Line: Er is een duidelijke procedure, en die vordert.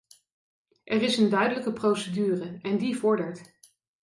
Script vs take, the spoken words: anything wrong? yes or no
no